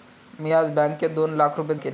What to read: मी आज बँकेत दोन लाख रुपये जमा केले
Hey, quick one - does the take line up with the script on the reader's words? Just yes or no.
no